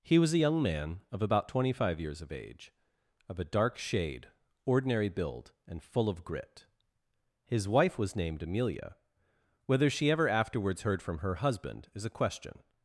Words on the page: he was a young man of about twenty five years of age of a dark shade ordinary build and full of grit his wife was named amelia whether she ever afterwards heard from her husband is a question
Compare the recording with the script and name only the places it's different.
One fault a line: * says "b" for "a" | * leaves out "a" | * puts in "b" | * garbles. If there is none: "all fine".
all fine